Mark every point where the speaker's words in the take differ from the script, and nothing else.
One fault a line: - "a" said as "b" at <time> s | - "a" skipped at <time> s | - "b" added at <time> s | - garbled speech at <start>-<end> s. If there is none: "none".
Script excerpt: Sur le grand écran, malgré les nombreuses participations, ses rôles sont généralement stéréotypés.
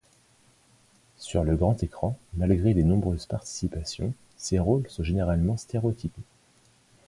none